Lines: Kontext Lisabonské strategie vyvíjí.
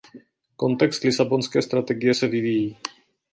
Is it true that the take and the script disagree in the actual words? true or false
true